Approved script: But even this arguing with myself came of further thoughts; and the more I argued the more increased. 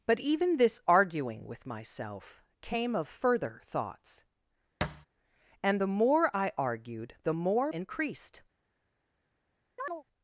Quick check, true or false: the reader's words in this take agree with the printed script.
true